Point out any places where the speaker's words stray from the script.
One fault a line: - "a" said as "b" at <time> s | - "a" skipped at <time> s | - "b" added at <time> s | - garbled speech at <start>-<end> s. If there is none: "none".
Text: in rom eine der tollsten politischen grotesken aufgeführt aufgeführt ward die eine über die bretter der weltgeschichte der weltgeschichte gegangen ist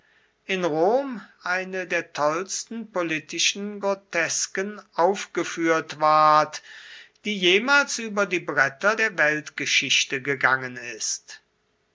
- "aufgeführt" skipped at 6.0 s
- "eine" said as "jemals" at 7.4 s
- "der weltgeschichte" skipped at 10.2 s